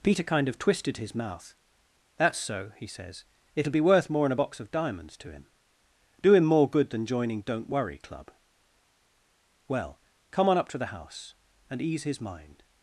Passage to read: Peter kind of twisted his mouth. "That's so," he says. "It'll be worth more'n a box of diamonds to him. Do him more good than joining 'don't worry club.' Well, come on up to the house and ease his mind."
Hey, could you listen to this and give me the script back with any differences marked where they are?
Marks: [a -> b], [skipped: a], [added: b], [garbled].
Peter kind of twisted his mouth. "That's so," he says. "It'll be worth more'n a box of diamonds to him. Do him more good than joining 'don't worry club.' Well, come on up to the house and ease his mind."